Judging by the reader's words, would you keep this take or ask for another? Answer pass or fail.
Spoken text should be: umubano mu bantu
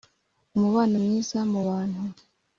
fail